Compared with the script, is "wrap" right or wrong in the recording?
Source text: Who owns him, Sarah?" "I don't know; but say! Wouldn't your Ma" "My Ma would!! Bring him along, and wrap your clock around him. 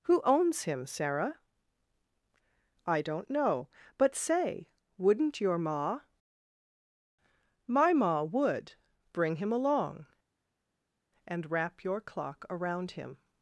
right